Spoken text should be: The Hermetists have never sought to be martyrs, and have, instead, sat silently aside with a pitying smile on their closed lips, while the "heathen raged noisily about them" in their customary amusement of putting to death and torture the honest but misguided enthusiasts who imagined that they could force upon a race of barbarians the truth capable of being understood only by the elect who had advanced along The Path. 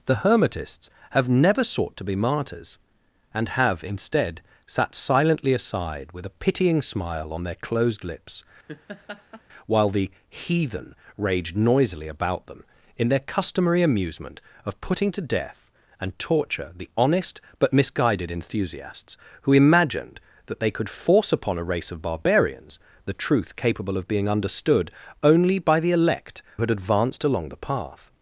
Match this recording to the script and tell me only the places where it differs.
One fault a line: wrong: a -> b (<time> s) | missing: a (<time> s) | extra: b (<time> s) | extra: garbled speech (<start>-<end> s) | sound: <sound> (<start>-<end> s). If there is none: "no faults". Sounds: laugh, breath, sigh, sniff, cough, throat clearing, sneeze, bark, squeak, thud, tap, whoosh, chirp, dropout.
sound: laugh (8.7-9.4 s)
missing: who (26.4 s)